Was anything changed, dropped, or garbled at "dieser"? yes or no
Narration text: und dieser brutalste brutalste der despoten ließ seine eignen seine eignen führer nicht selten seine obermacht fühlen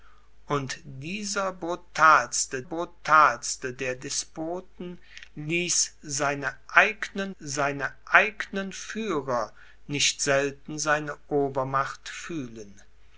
no